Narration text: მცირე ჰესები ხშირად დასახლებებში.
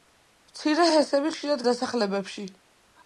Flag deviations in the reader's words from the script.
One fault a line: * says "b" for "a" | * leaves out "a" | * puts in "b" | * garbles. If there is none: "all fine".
all fine